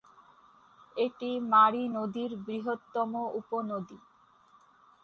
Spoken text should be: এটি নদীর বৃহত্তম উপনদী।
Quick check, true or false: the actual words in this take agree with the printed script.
false